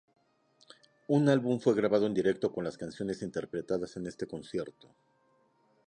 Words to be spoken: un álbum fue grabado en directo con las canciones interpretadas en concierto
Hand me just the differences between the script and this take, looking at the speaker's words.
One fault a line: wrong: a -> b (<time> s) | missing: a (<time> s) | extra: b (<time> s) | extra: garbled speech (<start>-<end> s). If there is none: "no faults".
extra: este (4.1 s)